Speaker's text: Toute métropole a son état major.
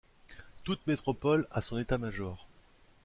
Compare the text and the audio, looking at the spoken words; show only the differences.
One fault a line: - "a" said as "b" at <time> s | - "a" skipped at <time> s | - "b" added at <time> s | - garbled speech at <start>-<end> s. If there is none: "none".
none